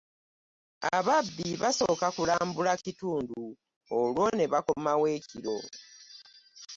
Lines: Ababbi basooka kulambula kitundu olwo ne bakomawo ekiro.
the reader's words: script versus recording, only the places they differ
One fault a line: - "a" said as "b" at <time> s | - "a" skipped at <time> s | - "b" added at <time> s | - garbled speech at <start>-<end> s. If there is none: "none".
none